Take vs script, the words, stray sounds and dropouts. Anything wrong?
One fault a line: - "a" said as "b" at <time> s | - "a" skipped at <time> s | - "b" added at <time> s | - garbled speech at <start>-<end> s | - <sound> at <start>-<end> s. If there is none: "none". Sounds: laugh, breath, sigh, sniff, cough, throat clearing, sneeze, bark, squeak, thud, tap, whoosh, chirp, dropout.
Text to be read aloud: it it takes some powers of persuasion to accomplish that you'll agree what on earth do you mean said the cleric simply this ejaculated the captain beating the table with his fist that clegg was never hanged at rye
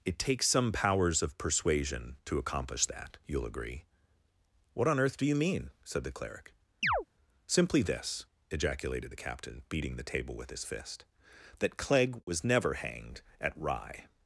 - "it" skipped at 0.2 s
- chirp at 6.8-7.0 s